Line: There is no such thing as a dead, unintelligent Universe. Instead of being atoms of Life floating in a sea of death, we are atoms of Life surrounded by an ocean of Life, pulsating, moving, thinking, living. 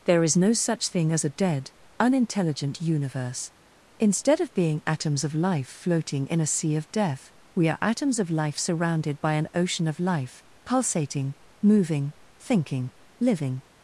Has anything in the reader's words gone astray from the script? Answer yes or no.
no